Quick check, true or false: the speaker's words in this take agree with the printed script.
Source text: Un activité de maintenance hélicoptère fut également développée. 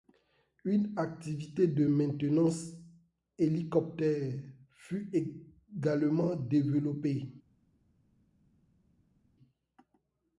false